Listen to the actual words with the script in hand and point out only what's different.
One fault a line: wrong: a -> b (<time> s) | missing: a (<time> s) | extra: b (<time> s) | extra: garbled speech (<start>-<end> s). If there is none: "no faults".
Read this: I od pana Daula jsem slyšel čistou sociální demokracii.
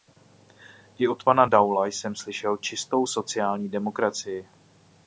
no faults